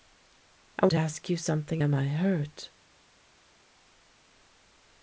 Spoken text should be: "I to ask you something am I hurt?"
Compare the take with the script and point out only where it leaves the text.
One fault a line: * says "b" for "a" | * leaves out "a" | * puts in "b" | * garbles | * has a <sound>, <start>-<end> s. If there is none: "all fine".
all fine